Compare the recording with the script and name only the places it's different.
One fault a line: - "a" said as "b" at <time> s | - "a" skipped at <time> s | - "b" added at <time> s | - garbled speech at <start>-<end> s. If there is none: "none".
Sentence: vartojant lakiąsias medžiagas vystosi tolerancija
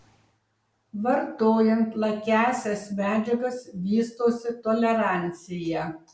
none